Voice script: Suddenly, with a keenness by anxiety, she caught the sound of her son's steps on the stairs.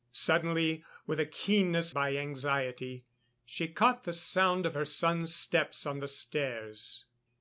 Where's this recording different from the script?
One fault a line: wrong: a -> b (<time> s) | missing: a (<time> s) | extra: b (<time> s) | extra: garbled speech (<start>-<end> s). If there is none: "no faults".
no faults